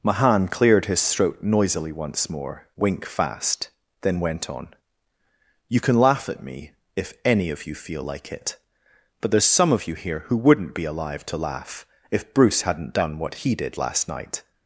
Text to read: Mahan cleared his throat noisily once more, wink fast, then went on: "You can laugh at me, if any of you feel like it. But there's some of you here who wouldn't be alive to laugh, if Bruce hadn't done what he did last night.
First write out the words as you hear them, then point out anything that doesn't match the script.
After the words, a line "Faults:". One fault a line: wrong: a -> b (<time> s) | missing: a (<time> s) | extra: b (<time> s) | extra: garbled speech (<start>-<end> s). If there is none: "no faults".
Mahan cleared his throat noisily once more, wink fast, then went on: "You can laugh at me, if any of you feel like it. But there's some of you here who wouldn't be alive to laugh, if Bruce hadn't done what he did last night.
Faults:
no faults